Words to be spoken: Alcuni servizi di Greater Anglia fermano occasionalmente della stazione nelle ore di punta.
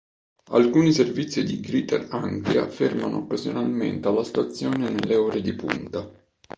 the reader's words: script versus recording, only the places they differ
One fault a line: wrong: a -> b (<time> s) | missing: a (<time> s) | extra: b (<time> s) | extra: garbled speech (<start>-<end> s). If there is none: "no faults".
wrong: della -> alla (4.1 s)